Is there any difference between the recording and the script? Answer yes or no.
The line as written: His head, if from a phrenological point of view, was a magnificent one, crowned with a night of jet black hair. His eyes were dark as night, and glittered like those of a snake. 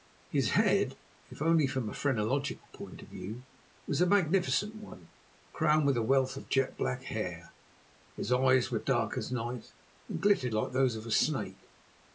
yes